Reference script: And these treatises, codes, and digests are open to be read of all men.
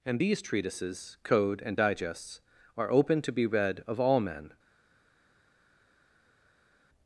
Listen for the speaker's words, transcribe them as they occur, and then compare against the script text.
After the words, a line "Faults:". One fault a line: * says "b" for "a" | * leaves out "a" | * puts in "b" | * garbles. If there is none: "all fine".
And these treatises, code, and digests are open to be read of all men.
Faults:
* says "code" for "codes"